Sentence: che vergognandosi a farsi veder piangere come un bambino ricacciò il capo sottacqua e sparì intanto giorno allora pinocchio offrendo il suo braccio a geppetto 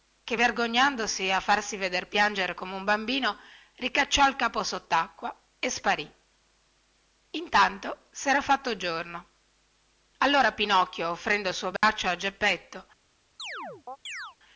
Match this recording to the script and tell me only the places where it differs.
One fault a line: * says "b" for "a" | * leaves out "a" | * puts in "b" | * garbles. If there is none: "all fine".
* puts in "sera fatto"